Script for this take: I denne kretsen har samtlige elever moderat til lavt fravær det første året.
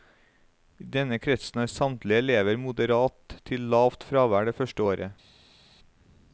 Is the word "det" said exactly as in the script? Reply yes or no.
yes